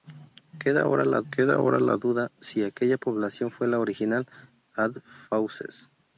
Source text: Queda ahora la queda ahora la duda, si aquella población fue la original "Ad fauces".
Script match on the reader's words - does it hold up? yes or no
yes